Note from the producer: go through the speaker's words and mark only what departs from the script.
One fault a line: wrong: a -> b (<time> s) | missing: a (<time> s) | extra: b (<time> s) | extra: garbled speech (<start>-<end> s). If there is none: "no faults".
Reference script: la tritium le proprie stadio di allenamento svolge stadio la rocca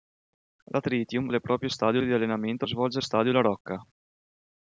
no faults